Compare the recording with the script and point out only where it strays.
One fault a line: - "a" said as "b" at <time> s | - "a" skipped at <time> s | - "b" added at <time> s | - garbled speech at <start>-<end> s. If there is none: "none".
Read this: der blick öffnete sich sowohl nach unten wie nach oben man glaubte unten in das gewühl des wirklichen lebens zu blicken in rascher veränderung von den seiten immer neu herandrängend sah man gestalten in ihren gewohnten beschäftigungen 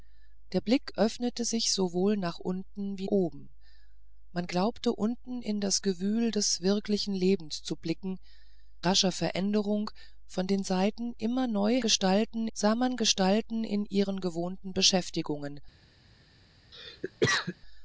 - "nach" skipped at 3.1 s
- "in" skipped at 8.2 s
- "herandrängend" said as "gestalten" at 11.8 s